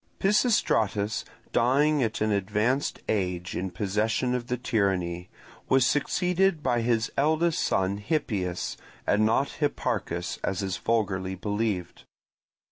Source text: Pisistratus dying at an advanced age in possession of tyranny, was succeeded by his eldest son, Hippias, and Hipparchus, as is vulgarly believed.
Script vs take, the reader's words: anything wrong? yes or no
yes